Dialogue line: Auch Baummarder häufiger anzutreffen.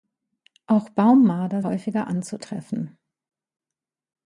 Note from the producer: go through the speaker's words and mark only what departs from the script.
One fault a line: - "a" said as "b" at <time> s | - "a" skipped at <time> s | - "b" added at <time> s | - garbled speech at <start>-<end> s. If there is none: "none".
none